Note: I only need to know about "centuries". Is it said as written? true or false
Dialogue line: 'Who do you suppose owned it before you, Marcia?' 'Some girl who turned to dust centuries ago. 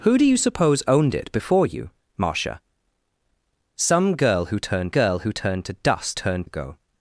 false